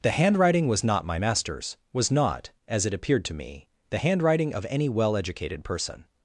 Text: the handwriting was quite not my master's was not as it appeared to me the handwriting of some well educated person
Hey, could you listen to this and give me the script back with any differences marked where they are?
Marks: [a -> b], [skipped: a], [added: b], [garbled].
the handwriting was [skipped: quite] not my master's was not as it appeared to me the handwriting of [some -> any] well educated person